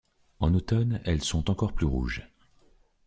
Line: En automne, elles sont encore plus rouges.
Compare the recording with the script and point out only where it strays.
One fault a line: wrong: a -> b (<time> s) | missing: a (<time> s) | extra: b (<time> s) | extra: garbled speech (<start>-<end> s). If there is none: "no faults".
no faults